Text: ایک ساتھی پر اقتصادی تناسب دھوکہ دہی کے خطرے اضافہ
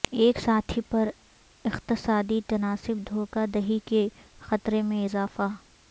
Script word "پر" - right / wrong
right